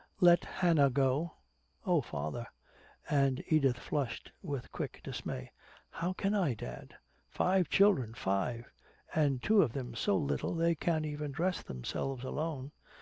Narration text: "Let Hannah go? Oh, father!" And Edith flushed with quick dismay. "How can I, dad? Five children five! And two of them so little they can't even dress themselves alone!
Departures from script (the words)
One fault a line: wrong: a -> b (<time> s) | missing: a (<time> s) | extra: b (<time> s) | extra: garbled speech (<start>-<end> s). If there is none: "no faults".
no faults